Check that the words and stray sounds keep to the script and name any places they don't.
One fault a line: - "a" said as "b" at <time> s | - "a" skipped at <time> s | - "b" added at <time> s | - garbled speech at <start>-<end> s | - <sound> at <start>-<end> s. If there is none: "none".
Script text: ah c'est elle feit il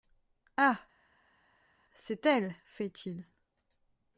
none